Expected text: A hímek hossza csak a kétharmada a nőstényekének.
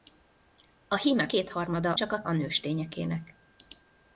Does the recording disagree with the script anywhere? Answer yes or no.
yes